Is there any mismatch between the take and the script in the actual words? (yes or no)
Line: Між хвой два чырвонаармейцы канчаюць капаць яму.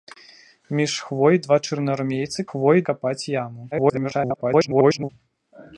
yes